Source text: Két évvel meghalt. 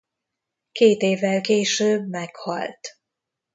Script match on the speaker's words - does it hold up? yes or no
no